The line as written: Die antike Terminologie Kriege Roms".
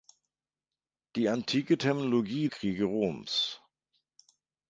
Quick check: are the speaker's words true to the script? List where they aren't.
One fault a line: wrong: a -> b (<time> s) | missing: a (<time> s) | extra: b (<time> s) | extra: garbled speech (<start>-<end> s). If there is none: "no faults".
no faults